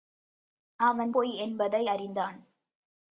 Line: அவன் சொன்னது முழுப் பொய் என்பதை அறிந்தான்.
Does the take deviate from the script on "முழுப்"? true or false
true